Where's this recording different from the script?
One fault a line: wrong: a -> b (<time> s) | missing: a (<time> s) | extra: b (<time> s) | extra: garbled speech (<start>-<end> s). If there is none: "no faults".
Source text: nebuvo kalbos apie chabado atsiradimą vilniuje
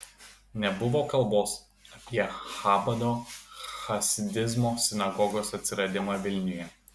extra: chasidizmo sinagogos (3.9 s)